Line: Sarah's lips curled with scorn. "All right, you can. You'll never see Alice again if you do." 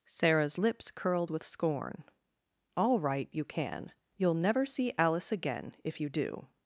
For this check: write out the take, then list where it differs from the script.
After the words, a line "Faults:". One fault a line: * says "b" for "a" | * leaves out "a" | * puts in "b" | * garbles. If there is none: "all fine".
Sarah's lips curled with scorn. "All right, you can. You'll never see Alice again if you do."
Faults:
all fine